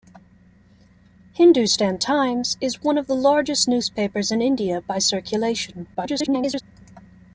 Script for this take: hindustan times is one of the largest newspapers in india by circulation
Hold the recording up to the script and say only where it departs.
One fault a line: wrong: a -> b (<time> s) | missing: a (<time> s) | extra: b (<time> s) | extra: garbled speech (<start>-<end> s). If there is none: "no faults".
extra: garbled speech (5.9-6.6 s)